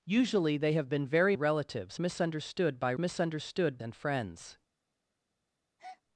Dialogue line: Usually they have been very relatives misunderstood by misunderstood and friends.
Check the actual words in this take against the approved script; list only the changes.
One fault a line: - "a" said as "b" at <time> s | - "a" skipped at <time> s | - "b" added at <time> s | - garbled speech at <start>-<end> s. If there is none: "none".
none